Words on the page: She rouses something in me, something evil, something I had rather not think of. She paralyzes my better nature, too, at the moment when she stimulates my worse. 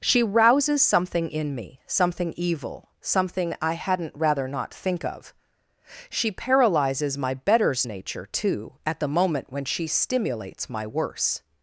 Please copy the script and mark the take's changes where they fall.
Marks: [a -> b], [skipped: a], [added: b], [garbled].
She rouses something in me, something evil, something I [had -> hadn't] rather not think of. She paralyzes my [better -> betters] nature, too, at the moment when she stimulates my worse.